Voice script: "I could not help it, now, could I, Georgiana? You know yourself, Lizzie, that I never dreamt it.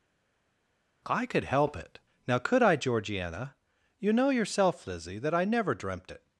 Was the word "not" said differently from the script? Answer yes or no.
yes